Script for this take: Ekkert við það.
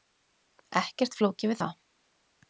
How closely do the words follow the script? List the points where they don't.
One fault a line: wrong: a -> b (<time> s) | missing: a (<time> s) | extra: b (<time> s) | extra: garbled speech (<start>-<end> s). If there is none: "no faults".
extra: flókið (1.2 s)